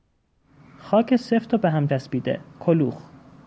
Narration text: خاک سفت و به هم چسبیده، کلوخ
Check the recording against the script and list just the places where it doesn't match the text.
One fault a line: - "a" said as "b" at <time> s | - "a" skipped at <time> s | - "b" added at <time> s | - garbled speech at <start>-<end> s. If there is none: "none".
none